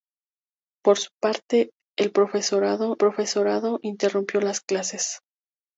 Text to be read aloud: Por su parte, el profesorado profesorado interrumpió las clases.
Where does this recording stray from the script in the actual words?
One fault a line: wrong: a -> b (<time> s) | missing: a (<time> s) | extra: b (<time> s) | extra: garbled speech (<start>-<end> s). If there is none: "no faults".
no faults